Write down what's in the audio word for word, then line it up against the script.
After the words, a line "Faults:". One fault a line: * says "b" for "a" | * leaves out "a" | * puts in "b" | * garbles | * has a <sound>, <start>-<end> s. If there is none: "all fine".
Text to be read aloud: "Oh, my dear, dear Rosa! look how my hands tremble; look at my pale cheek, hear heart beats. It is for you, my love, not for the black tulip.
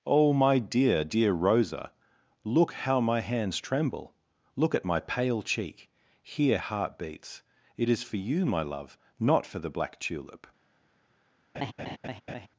"Oh, my dear, dear Rosa! look how my hands tremble; look at my pale cheek, hear heart beats. It is for you, my love, not for the black tulip.
Faults:
* has a laugh, 11.5-12.5 s